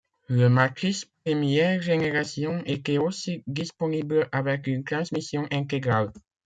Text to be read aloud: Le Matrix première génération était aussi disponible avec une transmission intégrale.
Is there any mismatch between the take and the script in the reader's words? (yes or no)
no